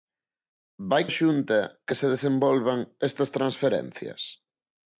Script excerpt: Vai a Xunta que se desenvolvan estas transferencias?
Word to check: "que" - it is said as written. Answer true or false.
true